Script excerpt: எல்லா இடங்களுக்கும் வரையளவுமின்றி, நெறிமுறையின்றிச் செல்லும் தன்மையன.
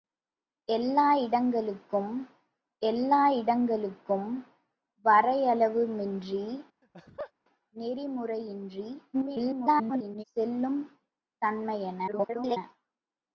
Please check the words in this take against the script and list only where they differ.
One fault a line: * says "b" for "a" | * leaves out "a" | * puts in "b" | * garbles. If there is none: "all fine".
* puts in "எல்லா இடங்களுக்கும்"
* garbles
* garbles